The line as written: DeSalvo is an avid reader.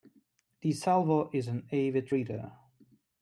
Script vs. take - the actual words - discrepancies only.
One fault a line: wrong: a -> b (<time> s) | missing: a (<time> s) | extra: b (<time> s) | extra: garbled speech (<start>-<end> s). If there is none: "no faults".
no faults